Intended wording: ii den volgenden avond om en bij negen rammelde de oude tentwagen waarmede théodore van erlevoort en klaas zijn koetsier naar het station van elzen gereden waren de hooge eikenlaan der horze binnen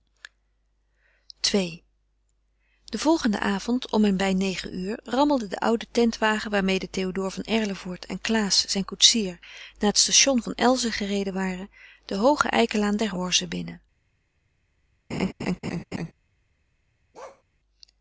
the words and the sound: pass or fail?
fail